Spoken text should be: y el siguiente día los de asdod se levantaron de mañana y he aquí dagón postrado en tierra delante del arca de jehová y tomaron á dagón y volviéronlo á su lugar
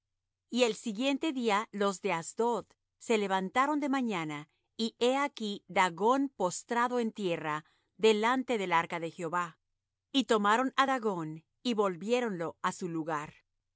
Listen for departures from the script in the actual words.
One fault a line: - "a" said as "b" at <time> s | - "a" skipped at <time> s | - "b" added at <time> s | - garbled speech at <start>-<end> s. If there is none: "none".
none